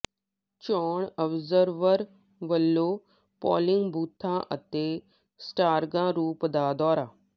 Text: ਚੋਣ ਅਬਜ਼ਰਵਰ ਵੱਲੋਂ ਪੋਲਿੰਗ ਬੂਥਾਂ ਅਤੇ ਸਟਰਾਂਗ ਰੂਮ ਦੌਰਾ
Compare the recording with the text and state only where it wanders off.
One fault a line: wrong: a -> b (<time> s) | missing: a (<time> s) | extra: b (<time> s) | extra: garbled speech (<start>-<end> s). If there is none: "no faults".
extra: ਦਾ (6.5 s)